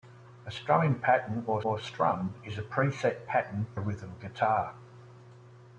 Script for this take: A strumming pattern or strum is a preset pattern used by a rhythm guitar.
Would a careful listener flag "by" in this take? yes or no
yes